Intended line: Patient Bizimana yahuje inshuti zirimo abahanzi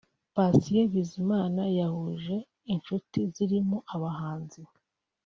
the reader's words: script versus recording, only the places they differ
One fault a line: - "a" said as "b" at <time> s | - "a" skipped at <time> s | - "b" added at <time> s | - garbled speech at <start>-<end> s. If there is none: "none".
none